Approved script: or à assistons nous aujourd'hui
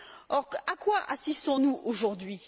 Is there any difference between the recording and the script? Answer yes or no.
yes